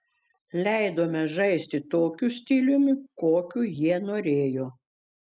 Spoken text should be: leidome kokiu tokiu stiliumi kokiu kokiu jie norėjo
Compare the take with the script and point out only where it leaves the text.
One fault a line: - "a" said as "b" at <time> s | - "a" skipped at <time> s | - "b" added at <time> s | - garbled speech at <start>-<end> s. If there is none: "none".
- "kokiu" said as "žaisti" at 1.3 s
- "kokiu" skipped at 3.6 s